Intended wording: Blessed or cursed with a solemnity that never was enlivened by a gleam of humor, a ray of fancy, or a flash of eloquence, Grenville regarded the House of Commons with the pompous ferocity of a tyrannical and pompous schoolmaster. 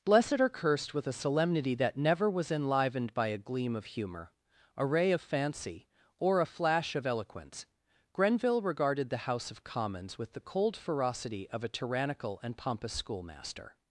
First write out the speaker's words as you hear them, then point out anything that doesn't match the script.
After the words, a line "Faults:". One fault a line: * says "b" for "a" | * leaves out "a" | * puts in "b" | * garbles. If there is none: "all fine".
Blessed or cursed with a solemnity that never was enlivened by a gleam of humor, a ray of fancy, or a flash of eloquence, Grenville regarded the House of Commons with the cold ferocity of a tyrannical and pompous schoolmaster.
Faults:
* says "cold" for "pompous"